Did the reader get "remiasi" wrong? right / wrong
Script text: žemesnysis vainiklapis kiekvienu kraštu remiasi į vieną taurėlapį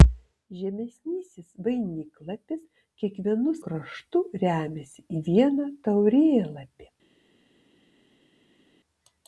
right